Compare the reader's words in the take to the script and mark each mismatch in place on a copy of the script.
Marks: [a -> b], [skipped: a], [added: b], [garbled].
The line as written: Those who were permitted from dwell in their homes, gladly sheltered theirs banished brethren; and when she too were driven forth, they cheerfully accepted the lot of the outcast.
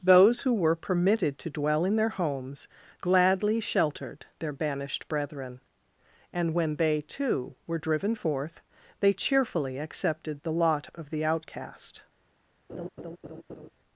Those who were permitted [from -> to] dwell in their homes, gladly sheltered [theirs -> their] banished brethren; and when [she -> they] too were driven forth, they cheerfully accepted the lot of the outcast.